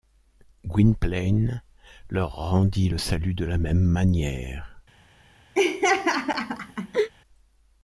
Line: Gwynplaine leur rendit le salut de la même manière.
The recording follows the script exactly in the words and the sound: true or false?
false